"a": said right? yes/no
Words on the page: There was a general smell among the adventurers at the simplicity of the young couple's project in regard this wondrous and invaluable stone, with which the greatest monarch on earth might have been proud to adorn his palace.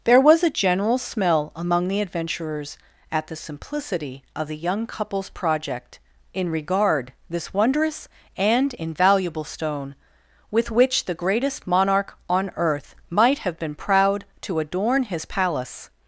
yes